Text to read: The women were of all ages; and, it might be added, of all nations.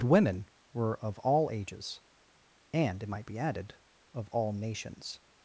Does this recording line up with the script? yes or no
no